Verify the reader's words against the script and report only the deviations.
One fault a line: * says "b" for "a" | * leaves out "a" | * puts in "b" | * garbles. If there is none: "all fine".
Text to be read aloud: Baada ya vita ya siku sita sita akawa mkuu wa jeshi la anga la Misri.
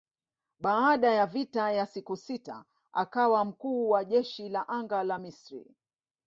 * leaves out "sita"